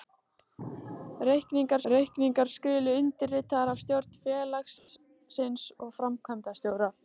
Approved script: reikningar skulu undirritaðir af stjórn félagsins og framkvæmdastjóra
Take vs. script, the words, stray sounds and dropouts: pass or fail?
fail